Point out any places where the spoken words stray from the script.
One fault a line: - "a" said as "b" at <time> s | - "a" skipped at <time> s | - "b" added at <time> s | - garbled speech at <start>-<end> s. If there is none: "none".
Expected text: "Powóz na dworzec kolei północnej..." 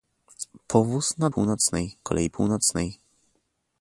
- "dworzec" said as "północnej" at 1.3 s